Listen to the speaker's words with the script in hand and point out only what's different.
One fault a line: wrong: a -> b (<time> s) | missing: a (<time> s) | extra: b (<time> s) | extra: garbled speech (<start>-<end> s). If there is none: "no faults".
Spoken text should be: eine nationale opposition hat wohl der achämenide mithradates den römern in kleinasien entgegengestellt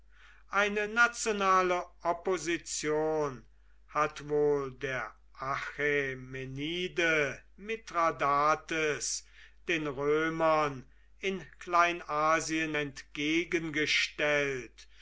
no faults